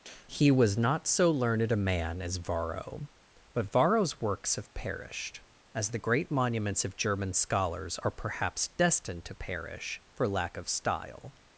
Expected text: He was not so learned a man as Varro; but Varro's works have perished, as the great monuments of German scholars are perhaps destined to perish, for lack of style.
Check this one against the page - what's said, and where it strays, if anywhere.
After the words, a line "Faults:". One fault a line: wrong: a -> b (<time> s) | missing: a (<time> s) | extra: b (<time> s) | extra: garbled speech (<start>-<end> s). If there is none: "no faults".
He was not so learned a man as Varro; but Varro's works have perished, as the great monuments of German scholars are perhaps destined to perish, for lack of style.
Faults:
no faults